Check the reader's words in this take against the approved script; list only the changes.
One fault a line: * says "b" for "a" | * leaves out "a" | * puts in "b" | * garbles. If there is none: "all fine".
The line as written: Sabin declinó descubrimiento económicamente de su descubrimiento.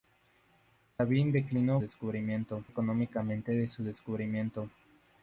all fine